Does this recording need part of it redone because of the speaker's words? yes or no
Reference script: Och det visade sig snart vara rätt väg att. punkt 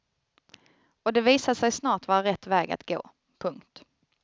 yes